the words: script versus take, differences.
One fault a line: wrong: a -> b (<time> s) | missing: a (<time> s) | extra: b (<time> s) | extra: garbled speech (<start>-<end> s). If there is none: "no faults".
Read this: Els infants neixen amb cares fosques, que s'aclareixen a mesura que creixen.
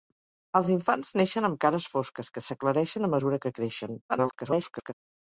extra: garbled speech (4.1-4.9 s)